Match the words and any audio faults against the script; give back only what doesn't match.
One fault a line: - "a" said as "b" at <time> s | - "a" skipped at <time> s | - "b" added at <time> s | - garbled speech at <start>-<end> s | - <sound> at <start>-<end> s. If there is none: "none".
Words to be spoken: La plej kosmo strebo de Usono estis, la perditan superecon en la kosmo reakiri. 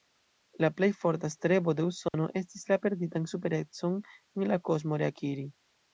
- "kosmo" said as "forta" at 1.0 s
- dropout at 2.1-2.1 s